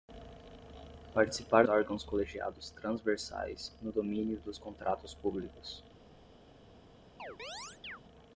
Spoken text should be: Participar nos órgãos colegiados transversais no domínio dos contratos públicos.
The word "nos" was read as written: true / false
false